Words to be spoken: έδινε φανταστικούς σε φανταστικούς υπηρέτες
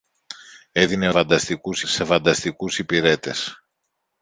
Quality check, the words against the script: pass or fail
pass